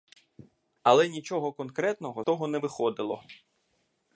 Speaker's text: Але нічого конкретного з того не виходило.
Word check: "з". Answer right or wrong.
wrong